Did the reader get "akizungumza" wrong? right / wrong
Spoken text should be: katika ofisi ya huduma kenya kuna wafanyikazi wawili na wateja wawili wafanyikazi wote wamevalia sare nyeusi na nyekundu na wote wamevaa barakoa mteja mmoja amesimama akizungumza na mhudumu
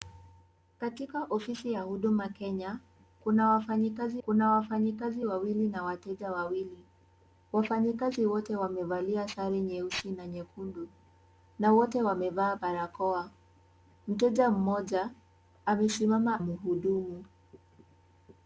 wrong